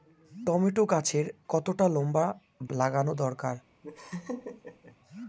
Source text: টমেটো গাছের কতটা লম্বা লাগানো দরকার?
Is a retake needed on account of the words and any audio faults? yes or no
yes